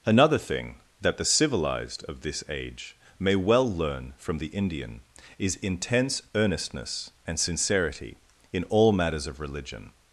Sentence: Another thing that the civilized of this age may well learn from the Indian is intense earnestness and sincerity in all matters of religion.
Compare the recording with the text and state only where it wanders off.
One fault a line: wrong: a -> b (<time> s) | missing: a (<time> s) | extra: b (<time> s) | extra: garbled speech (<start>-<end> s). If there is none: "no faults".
no faults